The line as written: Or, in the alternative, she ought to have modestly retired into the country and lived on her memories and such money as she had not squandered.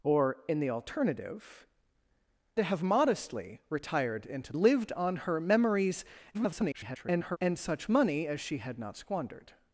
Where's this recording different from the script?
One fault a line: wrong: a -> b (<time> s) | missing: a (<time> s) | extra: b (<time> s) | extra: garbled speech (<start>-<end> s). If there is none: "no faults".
missing: she ought (1.7 s)
missing: the country and (4.5 s)
extra: garbled speech (6.3-7.4 s)